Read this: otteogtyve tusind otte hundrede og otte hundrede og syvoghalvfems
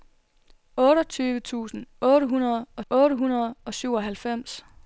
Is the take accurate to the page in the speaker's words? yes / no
yes